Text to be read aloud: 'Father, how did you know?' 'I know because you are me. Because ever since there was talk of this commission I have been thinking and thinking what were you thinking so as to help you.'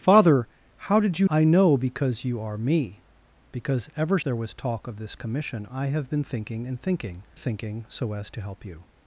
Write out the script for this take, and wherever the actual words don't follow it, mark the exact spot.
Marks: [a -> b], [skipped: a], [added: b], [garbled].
'Father, how did you [skipped: know?'] 'I know because you are me. Because ever [skipped: since] there was talk of this commission I have been thinking and thinking [skipped: what were you] thinking so as to help you.'